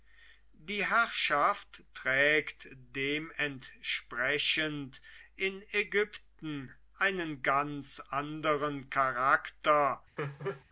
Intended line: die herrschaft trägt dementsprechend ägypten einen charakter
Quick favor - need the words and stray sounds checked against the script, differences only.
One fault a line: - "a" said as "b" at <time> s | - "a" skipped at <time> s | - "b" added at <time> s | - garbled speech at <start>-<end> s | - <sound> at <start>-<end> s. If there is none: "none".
- "in" added at 5.3 s
- "ganz anderen" added at 7.4 s
- laugh at 10.2-10.6 s